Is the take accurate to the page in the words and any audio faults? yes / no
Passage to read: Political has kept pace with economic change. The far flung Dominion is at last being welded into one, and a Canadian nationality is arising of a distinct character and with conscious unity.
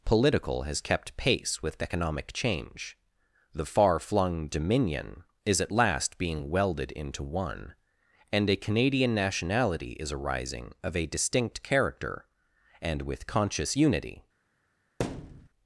no